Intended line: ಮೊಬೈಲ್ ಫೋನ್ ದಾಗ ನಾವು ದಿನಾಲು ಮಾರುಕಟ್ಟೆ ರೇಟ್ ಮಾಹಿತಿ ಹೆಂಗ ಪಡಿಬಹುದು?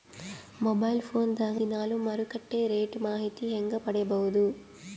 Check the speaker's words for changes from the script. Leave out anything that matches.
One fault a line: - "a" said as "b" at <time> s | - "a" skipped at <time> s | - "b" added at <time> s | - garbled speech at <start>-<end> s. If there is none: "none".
- "ನಾವು" skipped at 1.6 s